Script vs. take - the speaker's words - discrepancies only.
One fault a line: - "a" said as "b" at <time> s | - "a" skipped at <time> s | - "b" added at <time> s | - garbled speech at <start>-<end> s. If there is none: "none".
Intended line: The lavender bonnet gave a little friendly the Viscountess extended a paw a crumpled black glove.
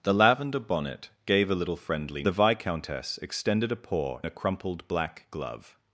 none